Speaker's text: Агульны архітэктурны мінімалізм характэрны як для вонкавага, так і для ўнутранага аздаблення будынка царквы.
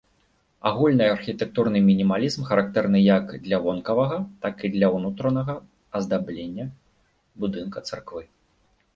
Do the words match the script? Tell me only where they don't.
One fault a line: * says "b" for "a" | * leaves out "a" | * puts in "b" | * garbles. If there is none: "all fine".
all fine